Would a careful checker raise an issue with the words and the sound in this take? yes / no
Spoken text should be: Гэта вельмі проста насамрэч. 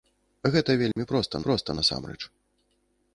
yes